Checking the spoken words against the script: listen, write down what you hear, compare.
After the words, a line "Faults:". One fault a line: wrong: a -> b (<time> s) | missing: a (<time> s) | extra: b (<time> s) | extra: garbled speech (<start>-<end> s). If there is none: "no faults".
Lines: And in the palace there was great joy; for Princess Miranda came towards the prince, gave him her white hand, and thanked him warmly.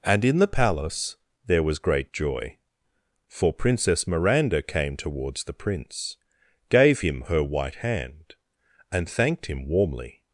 And in the palace there was great joy; for Princess Miranda came towards the prince, gave him her white hand, and thanked him warmly.
Faults:
no faults